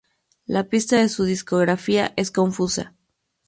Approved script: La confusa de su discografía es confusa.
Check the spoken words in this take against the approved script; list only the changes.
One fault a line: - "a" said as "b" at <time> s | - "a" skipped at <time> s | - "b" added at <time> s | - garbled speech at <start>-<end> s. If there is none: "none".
- "confusa" said as "pista" at 0.6 s